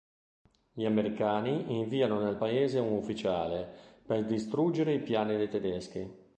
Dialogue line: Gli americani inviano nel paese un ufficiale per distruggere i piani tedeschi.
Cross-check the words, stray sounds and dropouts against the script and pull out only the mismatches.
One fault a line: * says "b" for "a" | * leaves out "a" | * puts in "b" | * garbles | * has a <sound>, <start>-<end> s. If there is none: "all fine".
* puts in "dei"